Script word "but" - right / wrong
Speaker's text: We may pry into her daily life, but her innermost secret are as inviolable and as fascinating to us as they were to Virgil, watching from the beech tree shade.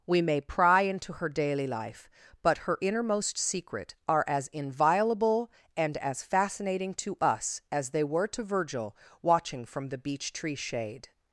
right